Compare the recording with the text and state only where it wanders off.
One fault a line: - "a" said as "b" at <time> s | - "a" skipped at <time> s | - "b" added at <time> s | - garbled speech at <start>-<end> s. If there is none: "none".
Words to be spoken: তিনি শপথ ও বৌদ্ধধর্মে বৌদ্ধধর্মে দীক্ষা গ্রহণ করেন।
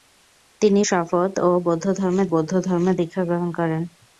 none